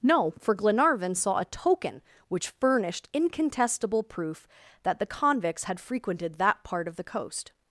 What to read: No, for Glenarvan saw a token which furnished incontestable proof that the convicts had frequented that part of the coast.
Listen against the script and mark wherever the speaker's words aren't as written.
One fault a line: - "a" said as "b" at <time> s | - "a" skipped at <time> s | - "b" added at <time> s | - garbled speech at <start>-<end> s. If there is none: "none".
none